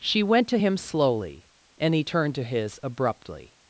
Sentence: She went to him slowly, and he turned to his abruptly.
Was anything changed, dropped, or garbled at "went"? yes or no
no